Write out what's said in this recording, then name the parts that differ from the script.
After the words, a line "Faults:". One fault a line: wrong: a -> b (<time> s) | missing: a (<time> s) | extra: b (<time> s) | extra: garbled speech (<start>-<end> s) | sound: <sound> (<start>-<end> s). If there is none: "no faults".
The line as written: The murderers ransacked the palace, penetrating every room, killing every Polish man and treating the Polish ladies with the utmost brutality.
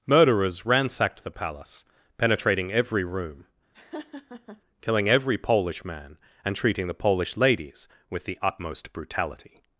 murderers ransacked the palace, penetrating every room, killing every Polish man and treating the Polish ladies with the utmost brutality.
Faults:
missing: The (0.1 s)
sound: laugh (3.7-4.6 s)